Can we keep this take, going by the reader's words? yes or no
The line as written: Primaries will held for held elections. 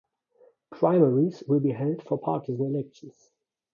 no